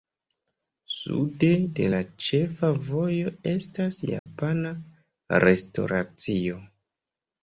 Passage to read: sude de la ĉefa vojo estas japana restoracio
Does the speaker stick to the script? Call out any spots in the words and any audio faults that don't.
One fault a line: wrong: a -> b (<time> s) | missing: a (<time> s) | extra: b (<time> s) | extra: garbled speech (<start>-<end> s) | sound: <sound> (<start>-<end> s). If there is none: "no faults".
sound: dropout (4.2-4.3 s)